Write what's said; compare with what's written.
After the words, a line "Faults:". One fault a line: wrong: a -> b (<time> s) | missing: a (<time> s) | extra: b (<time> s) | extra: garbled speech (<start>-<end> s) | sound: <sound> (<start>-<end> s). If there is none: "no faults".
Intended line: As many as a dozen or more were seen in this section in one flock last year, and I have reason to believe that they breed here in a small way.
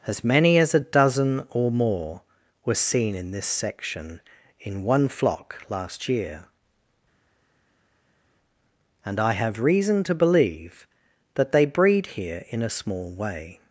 As many as a dozen or more were seen in this section in one flock last year, and I have reason to believe that they breed here in a small way.
Faults:
no faults